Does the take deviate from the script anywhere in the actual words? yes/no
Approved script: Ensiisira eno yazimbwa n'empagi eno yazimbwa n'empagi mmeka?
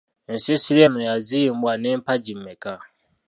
yes